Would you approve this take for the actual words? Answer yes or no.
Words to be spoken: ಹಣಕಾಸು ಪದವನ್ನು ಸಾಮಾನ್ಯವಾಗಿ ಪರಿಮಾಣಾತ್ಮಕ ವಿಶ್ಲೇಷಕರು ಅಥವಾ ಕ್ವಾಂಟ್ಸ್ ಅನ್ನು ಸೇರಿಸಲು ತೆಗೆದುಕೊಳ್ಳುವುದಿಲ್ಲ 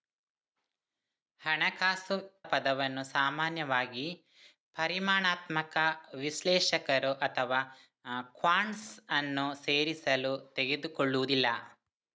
yes